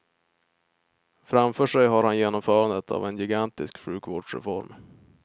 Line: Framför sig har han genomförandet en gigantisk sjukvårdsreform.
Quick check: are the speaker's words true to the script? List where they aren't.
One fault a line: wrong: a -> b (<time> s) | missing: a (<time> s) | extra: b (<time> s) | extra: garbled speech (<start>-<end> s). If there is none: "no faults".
extra: av (2.9 s)